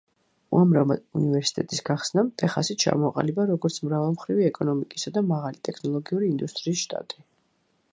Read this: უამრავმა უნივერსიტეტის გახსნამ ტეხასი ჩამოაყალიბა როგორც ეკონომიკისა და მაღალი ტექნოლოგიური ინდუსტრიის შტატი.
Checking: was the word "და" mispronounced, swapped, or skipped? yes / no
no